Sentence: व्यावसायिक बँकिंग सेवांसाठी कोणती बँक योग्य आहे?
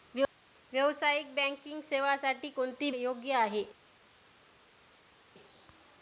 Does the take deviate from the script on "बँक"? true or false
true